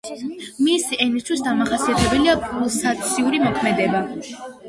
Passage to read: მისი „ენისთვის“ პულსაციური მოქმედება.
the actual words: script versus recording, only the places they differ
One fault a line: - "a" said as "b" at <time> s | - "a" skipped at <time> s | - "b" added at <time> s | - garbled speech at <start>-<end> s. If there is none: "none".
- "დამახასიათებელია" added at 1.5 s